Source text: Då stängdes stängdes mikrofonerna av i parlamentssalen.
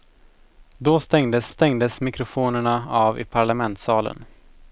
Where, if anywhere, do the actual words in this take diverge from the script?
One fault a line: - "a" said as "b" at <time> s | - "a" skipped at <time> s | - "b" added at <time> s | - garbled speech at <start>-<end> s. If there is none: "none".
none